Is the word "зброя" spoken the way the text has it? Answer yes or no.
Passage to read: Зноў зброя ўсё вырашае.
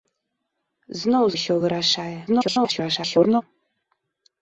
no